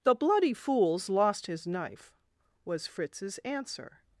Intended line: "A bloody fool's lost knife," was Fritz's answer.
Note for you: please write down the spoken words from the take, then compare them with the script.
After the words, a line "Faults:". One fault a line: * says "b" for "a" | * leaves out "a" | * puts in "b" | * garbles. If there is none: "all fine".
"The bloody fool's lost his knife," was Fritz's answer.
Faults:
* says "The" for "A"
* puts in "his"